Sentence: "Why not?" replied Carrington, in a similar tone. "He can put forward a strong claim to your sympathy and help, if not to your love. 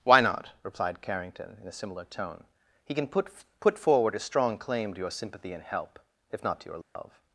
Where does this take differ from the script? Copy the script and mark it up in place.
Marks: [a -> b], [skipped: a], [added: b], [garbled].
"Why not?" replied Carrington, in a similar tone. "He can put [added: put] forward a strong claim to your sympathy and help, if not to your love.